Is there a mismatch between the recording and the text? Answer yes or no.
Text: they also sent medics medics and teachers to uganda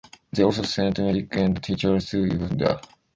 yes